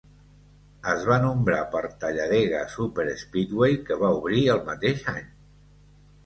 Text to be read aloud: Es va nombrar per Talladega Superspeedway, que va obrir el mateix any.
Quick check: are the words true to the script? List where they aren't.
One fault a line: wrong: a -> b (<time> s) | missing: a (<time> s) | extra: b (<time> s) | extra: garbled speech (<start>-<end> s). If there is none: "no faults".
no faults